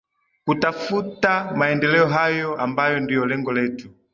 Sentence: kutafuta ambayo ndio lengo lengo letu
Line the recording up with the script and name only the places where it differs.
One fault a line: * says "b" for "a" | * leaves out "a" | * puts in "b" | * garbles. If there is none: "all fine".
* puts in "maendeleo hayo"
* leaves out "lengo"